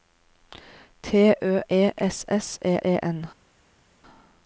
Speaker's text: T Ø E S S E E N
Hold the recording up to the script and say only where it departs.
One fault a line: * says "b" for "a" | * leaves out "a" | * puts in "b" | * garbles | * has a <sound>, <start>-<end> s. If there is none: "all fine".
all fine